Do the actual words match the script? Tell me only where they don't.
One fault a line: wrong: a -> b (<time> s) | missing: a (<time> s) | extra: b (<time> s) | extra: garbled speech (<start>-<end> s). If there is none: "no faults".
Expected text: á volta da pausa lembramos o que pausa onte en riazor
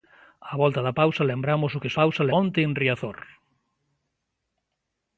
no faults